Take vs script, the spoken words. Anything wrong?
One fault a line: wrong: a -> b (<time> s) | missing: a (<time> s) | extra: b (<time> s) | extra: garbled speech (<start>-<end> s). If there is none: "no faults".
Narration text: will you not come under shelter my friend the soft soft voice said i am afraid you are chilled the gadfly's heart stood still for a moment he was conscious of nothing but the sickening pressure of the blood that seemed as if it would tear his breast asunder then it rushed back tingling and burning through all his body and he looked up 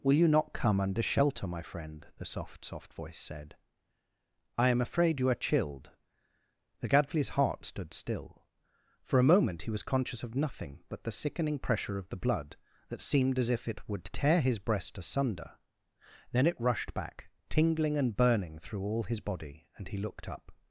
no faults